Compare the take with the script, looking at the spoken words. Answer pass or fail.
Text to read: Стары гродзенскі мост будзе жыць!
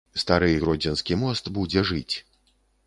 pass